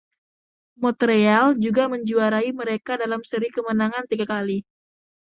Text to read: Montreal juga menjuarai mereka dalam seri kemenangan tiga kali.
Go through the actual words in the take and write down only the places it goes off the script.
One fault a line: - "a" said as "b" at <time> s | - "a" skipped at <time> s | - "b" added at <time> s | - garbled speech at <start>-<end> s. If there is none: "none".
none